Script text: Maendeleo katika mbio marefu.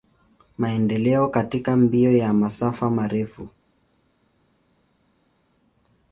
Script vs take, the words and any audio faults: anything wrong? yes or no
yes